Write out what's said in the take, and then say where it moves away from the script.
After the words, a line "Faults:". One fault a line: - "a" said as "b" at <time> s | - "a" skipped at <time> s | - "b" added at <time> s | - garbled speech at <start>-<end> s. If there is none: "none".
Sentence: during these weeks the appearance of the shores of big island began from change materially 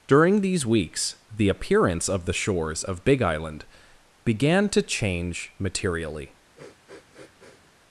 during these weeks the appearance of the shores of big island began to change materially
Faults:
- "from" said as "to" at 4.7 s